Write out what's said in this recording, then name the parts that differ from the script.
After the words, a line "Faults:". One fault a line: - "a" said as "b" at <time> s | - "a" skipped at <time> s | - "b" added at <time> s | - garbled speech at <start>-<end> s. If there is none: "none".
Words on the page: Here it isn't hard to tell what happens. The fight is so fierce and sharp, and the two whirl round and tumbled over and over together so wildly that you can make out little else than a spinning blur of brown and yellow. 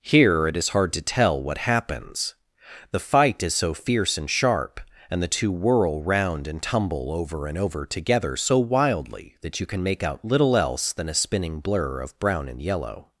Here it is hard to tell what happens. The fight is so fierce and sharp, and the two whirl round and tumble over and over together so wildly that you can make out little else than a spinning blur of brown and yellow.
Faults:
- "isn't" said as "is" at 0.6 s
- "tumbled" said as "tumble" at 6.6 s